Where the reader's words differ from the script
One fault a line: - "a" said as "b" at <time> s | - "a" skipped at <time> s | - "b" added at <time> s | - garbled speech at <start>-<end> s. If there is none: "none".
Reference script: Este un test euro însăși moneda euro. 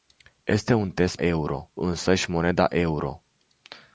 none